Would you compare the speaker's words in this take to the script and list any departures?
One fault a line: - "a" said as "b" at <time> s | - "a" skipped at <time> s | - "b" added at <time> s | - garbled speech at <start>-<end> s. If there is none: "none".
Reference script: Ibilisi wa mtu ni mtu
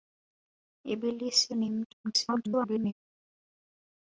- "wa mtu" skipped at 1.6 s
- garbled speech at 2.0-2.9 s